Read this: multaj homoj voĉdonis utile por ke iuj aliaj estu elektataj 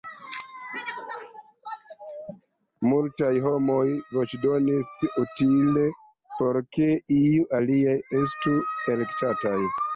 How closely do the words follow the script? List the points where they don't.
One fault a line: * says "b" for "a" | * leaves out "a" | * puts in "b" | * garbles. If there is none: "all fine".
all fine